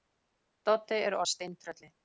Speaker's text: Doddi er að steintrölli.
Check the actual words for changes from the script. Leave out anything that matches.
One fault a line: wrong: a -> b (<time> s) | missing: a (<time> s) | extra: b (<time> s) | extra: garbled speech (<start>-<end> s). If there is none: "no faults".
no faults